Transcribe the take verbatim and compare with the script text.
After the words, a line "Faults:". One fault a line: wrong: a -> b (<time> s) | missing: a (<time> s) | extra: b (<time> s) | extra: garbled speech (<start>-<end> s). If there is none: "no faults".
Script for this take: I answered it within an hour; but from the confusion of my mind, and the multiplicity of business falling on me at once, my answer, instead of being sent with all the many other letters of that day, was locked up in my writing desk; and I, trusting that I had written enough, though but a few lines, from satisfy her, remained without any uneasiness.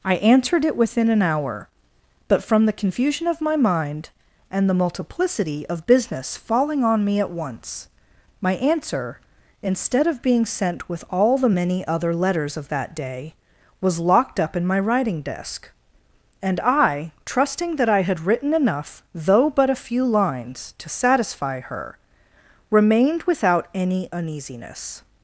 I answered it within an hour; but from the confusion of my mind, and the multiplicity of business falling on me at once, my answer, instead of being sent with all the many other letters of that day, was locked up in my writing desk; and I, trusting that I had written enough, though but a few lines, to satisfy her, remained without any uneasiness.
Faults:
wrong: from -> to (20.8 s)